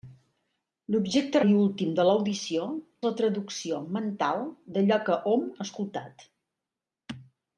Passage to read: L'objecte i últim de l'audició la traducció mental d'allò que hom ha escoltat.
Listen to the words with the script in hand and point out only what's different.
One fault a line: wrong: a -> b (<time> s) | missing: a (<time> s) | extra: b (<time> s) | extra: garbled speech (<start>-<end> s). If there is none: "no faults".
no faults